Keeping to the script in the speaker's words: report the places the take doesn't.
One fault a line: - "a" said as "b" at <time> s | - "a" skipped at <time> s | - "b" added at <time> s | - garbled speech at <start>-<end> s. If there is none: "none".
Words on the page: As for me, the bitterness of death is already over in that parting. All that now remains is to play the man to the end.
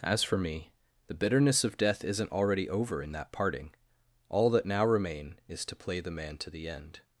- "is" said as "isn't" at 2.0 s
- "remains" said as "remain" at 4.8 s